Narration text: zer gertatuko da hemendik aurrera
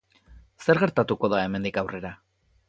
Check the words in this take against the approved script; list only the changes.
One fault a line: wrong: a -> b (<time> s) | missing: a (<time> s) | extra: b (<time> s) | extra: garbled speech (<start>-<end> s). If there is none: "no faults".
no faults